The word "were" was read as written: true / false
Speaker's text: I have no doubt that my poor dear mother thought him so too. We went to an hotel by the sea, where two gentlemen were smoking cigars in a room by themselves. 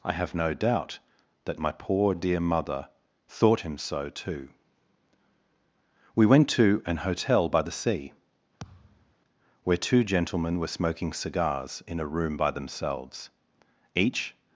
true